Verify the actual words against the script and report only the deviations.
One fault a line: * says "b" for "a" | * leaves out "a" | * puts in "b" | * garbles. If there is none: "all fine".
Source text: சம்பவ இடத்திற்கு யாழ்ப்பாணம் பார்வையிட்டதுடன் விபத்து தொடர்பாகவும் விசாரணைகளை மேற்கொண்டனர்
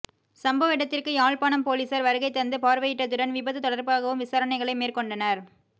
* puts in "பொலிஸார் வருகை தந்து"